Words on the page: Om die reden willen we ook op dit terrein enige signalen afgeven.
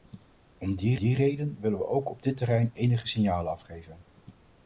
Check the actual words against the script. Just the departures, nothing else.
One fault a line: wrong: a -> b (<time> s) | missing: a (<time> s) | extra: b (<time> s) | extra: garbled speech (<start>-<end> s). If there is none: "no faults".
extra: die (0.9 s)